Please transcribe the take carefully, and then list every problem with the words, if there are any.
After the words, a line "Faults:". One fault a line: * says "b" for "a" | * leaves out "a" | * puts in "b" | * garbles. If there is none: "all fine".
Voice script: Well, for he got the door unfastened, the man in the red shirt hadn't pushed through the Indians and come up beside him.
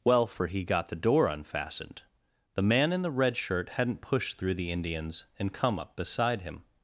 Well, for he got the door unfastened, the man in the red shirt hadn't pushed through the Indians and come up beside him.
Faults:
all fine